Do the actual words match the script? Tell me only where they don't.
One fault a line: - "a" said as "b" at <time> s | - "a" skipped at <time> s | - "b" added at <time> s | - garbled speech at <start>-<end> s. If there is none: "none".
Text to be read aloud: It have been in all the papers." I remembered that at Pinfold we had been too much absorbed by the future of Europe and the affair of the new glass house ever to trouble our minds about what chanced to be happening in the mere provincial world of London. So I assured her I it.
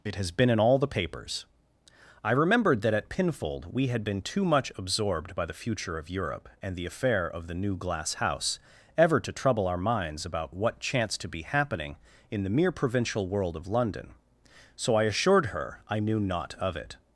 - "have" said as "has" at 0.1 s
- "knew naught of" added at 16.0 s